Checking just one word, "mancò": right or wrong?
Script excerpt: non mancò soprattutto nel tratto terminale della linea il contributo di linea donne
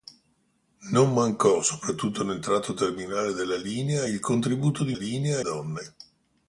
right